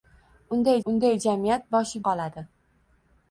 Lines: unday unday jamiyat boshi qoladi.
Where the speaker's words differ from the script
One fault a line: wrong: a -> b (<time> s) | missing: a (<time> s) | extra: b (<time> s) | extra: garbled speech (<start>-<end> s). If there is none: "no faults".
no faults